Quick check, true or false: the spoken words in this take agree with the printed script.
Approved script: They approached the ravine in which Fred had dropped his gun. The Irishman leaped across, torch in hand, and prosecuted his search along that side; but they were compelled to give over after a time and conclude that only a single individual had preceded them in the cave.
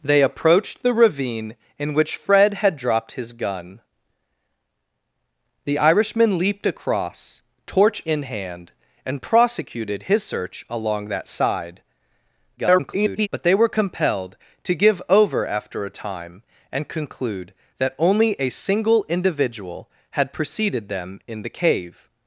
false